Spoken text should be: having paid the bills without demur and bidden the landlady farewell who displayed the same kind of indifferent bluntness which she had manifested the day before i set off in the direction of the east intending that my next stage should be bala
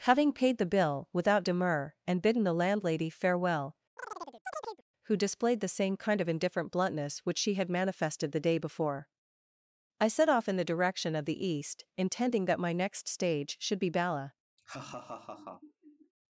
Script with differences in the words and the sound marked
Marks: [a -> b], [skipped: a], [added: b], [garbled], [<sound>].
having paid the [bills -> bill] without demur and bidden the landlady farewell [chirp] who displayed the same kind of indifferent bluntness which she had manifested the day before i set off in the direction of the east intending that my next stage should be bala [laugh]